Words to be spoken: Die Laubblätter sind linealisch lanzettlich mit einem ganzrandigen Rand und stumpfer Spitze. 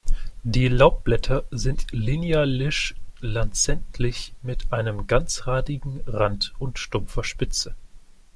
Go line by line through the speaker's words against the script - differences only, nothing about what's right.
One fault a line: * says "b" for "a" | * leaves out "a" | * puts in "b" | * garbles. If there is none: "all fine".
all fine